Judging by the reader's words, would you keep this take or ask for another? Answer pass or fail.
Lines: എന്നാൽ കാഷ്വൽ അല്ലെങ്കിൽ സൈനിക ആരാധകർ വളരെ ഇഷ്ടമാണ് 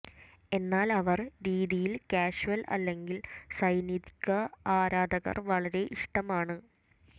fail